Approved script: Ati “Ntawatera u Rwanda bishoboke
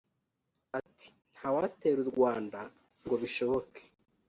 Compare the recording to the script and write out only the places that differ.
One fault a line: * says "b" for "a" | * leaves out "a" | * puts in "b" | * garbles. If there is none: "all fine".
* puts in "ngo"